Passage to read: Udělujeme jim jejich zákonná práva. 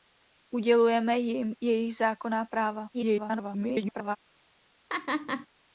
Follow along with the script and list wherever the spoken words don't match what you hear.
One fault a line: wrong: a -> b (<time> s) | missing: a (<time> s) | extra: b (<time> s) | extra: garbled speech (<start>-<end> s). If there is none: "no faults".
extra: garbled speech (2.9-4.2 s)